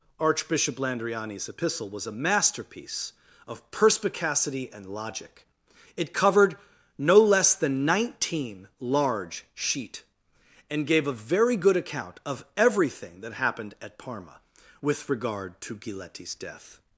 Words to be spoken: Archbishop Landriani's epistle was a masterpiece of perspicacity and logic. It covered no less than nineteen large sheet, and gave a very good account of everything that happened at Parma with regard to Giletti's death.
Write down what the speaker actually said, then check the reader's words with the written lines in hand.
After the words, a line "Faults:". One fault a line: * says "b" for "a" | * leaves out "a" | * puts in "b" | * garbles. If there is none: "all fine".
Archbishop Landriani's epistle was a masterpiece of perspicacity and logic. It covered no less than nineteen large sheet, and gave a very good account of everything that happened at Parma with regard to Giletti's death.
Faults:
all fine